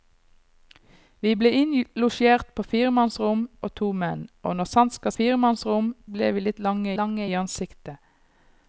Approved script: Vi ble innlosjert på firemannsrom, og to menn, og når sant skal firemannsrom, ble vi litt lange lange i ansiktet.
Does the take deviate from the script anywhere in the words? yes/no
no